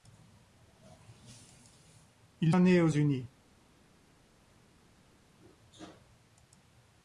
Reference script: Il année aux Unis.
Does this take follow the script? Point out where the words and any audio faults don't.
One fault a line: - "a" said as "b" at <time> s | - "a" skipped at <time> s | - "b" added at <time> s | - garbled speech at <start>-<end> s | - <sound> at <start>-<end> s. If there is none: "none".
none